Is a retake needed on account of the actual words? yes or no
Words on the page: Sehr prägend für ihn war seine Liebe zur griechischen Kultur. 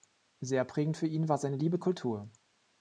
yes